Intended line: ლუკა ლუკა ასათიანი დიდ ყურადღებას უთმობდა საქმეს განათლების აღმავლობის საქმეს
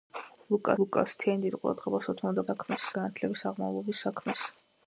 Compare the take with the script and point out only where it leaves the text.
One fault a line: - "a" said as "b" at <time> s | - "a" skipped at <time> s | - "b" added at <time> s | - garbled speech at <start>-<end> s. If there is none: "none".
none